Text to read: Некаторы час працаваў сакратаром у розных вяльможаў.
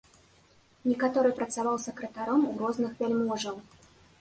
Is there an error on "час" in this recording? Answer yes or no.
yes